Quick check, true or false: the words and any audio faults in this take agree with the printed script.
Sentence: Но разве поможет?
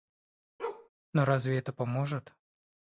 false